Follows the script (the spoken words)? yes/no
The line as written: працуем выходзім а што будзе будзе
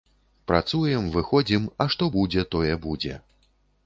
no